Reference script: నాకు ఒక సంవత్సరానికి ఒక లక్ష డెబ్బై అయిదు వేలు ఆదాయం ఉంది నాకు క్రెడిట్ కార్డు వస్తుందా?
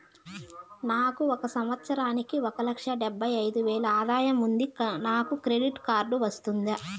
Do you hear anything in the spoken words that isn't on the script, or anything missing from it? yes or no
no